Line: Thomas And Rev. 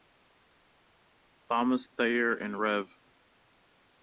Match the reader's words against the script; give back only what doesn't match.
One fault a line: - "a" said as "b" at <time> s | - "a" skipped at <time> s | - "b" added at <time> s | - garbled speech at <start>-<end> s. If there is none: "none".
- "Thayer" added at 1.8 s